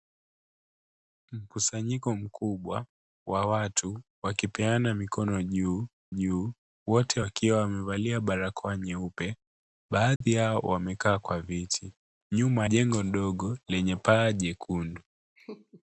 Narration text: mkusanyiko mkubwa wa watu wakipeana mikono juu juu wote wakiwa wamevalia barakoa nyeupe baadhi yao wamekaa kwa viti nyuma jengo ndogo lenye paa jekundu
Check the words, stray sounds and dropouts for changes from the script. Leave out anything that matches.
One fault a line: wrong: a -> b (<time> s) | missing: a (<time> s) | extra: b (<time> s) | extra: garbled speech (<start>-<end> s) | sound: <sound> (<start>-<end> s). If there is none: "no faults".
sound: dropout (10.2-10.2 s)
sound: laugh (15.4-15.8 s)